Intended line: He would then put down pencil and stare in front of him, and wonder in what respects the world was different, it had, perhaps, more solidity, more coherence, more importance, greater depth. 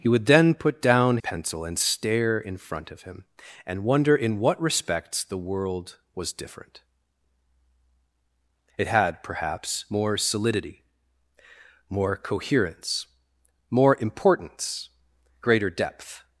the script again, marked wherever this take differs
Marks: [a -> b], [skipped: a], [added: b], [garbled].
He would then put down pencil and stare in front of him, and wonder in what respects the world was different, it had, perhaps, more solidity, more coherence, more importance, greater depth.